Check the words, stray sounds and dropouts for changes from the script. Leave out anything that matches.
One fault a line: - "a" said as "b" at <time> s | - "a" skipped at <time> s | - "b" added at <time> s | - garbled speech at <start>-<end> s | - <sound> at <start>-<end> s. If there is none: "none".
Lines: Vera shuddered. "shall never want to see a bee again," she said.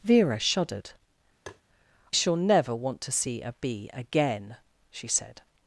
- tap at 1.5-1.6 s